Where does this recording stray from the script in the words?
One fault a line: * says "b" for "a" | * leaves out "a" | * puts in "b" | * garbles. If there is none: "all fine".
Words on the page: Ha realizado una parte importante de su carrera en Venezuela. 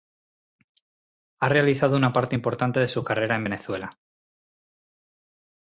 all fine